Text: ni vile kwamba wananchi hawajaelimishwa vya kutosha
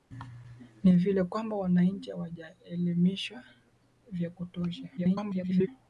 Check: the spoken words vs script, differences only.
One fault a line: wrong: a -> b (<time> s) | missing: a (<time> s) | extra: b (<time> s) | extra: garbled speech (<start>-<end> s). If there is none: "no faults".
extra: garbled speech (5.0-5.7 s)